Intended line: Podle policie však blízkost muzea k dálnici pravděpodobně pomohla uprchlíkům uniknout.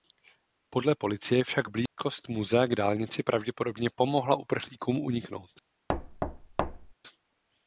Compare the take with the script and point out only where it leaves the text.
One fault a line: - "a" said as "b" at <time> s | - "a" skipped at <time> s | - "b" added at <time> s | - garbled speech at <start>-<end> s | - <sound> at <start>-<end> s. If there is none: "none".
- dropout at 1.9-2.0 s
- thud at 5.9-6.9 s